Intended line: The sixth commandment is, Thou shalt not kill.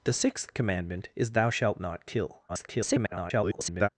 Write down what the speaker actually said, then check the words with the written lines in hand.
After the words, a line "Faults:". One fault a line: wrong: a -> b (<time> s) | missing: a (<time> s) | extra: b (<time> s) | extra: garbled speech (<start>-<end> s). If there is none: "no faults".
The sixth commandment is, Thou shalt not kill. [garbled]
Faults:
extra: garbled speech (2.5-3.9 s)